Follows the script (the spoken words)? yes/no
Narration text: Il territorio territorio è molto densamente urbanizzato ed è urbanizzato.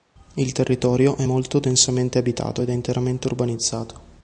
no